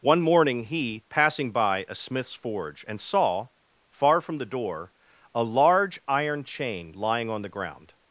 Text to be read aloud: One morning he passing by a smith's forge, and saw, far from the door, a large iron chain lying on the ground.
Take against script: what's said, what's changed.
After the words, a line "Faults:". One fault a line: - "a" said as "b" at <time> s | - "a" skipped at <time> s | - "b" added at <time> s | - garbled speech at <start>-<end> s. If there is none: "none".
One morning he passing by a smith's forge, and saw, far from the door, a large iron chain lying on the ground.
Faults:
none